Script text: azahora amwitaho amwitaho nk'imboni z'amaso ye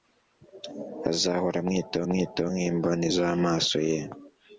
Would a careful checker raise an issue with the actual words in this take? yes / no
no